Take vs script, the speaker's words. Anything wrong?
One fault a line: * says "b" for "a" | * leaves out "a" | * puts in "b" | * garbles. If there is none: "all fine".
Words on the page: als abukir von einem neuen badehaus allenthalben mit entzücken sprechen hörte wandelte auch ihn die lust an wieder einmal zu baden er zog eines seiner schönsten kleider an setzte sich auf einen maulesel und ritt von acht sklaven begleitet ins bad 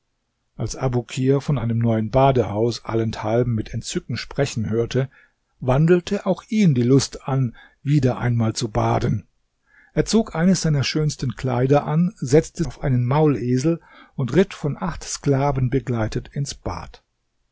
* leaves out "sich"